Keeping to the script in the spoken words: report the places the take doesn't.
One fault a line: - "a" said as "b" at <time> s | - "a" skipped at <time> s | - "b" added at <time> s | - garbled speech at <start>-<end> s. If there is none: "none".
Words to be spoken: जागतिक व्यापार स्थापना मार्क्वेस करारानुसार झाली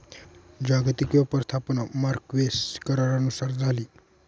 none